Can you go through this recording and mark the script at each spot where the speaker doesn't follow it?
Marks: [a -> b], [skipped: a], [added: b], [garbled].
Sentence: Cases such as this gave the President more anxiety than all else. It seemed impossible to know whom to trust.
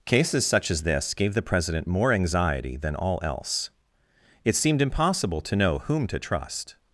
Cases such as this gave the President more anxiety than all else. It seemed impossible to know whom to trust.